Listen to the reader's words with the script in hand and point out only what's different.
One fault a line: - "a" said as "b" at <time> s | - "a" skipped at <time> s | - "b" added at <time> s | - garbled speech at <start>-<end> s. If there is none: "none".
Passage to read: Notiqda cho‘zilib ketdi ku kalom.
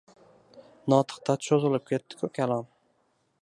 none